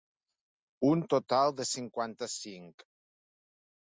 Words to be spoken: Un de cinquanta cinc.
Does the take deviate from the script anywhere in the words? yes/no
yes